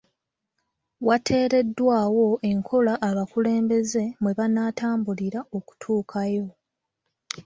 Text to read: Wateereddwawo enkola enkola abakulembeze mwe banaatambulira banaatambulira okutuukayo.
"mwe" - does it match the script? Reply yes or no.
yes